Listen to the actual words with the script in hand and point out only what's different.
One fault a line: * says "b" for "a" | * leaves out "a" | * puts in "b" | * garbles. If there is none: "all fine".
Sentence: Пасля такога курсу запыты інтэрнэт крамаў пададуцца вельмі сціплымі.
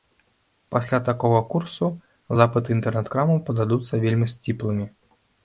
all fine